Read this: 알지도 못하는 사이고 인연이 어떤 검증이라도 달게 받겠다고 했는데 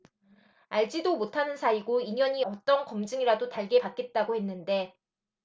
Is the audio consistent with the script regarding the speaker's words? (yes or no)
yes